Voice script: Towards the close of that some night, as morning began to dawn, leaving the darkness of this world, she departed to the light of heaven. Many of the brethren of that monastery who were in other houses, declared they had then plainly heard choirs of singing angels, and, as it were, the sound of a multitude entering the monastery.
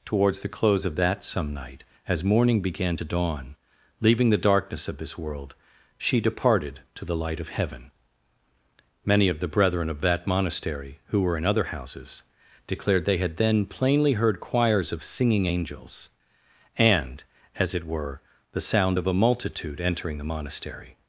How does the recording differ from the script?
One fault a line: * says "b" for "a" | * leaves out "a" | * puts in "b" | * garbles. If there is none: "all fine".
all fine